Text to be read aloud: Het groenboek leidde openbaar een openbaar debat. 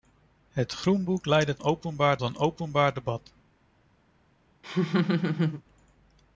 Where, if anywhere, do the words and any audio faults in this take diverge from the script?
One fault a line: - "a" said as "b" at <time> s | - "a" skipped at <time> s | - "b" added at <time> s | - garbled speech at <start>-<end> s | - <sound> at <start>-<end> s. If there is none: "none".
- laugh at 4.6-5.6 s